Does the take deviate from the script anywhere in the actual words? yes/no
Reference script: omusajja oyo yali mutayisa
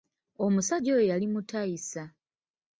no